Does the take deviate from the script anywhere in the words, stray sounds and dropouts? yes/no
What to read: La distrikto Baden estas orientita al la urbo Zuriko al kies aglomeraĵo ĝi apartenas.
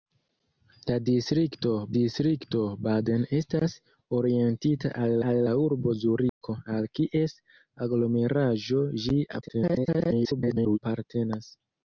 yes